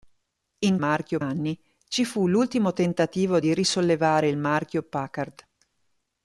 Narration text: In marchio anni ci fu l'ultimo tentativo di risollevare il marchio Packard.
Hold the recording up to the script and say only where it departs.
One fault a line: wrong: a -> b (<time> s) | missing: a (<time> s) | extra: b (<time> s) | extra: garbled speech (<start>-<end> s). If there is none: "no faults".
no faults